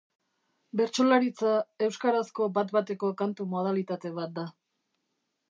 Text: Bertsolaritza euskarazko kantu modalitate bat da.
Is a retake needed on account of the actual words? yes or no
yes